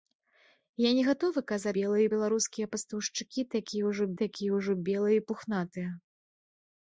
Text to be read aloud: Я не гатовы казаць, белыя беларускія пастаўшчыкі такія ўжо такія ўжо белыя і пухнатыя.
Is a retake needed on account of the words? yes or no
no